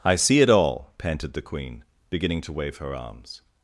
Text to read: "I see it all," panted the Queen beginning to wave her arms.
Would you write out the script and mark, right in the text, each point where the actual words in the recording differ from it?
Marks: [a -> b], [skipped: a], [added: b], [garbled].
"I see it all," panted the Queen beginning to wave her arms.